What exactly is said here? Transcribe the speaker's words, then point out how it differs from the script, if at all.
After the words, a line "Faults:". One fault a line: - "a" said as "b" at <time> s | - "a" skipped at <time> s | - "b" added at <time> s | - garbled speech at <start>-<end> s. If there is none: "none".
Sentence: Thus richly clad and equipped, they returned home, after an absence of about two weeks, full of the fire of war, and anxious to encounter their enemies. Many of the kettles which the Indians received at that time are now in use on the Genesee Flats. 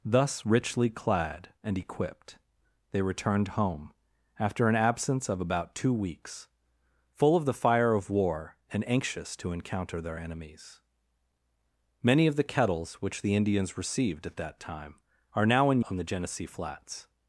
Thus richly clad and equipped, they returned home, after an absence of about two weeks, full of the fire of war, and anxious to encounter their enemies. Many of the kettles which the Indians received at that time are now in on the Genesee Flats.
Faults:
- "use" skipped at 15.8 s